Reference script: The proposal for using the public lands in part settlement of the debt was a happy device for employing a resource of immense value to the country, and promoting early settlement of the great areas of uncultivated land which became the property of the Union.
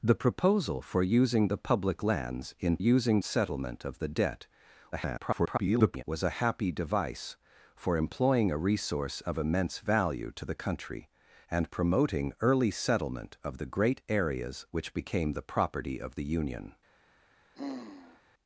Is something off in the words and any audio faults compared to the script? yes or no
yes